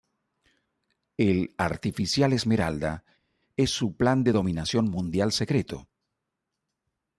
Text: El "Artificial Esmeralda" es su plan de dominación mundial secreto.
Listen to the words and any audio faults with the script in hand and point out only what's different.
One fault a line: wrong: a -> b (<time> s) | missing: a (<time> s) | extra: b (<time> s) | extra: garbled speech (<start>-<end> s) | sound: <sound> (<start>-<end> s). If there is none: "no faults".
no faults